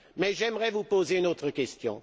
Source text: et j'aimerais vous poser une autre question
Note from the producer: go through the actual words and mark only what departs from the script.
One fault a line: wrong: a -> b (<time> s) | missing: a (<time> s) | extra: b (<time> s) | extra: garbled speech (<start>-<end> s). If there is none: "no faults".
wrong: et -> mais (0.2 s)